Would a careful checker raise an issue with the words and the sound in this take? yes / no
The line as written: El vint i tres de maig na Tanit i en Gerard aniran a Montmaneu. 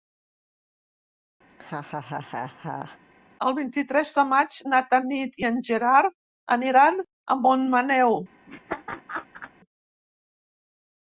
yes